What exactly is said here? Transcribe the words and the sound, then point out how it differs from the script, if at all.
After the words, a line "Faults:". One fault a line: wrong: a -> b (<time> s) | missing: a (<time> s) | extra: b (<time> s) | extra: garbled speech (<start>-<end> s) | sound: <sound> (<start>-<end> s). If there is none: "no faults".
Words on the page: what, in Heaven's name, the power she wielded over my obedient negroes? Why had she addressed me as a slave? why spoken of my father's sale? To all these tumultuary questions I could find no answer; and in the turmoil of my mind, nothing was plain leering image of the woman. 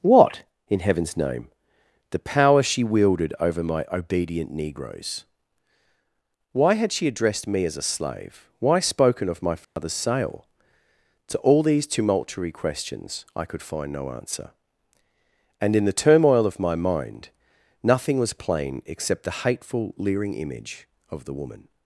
what, in Heaven's name, the power she wielded over my obedient negroes? Why had she addressed me as a slave? why spoken of my father's sale? To all these tumultuary questions I could find no answer; and in the turmoil of my mind, nothing was plain except the hateful leering image of the woman.
Faults:
sound: dropout (9.6-9.8 s)
extra: except the hateful (18.9 s)